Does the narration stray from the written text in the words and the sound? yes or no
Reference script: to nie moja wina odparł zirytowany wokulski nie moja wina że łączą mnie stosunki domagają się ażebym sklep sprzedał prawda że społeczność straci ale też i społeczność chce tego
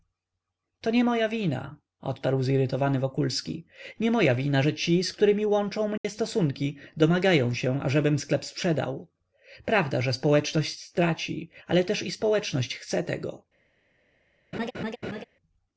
yes